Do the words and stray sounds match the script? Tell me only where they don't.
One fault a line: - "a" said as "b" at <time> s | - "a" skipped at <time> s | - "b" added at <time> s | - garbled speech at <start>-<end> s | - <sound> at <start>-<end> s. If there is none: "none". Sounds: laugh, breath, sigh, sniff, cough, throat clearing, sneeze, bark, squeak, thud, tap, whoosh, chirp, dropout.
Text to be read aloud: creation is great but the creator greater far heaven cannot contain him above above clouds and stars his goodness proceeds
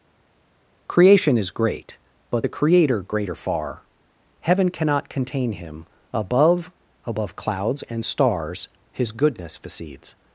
none